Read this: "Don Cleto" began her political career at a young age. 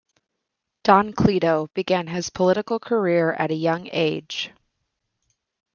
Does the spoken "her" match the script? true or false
false